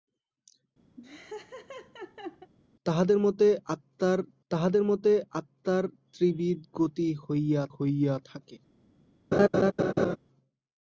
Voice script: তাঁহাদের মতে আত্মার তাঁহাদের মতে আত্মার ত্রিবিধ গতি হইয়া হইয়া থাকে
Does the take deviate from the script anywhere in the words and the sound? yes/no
yes